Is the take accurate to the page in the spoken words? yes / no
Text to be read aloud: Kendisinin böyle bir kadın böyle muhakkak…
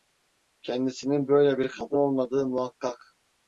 no